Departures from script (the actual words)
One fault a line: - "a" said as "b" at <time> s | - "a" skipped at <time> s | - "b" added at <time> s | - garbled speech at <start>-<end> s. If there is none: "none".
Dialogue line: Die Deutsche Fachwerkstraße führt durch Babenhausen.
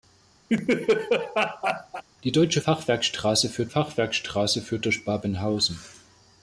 - "Fachwerkstraße führt" added at 3.7 s